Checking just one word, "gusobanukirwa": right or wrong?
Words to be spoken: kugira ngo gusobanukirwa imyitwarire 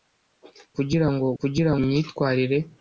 wrong